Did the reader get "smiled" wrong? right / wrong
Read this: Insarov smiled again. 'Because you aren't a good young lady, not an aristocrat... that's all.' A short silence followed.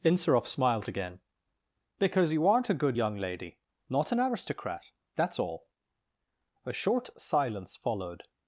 right